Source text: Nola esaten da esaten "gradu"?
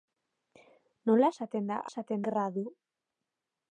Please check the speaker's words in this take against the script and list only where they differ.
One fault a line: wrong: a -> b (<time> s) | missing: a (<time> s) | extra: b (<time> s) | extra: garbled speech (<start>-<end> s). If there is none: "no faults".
no faults